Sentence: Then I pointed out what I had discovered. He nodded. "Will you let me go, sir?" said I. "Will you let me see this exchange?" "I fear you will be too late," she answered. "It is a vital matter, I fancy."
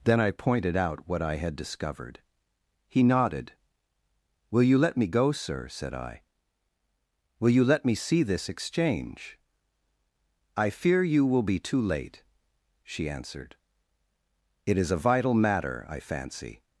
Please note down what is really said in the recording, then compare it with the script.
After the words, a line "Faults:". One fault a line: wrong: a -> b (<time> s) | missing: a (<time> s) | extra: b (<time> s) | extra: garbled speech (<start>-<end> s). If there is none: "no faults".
Then I pointed out what I had discovered. He nodded. "Will you let me go, sir?" said I. "Will you let me see this exchange?" "I fear you will be too late," she answered. "It is a vital matter, I fancy."
Faults:
no faults